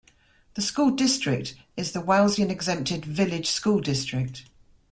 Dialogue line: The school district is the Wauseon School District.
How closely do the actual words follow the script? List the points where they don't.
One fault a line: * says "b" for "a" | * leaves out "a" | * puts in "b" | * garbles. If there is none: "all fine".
* puts in "Exempted Village"